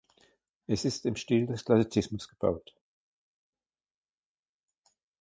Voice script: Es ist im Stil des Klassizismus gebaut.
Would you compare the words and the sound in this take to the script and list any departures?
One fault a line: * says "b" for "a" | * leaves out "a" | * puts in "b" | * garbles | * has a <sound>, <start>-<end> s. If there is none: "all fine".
all fine